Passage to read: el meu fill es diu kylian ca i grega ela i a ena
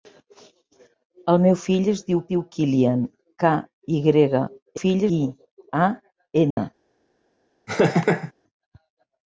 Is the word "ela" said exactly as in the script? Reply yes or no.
no